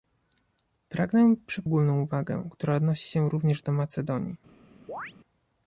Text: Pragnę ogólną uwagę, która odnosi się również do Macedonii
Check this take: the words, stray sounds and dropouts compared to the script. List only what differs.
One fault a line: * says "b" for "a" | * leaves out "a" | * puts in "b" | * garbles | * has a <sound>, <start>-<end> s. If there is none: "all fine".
* has a chirp, 4.9-5.1 s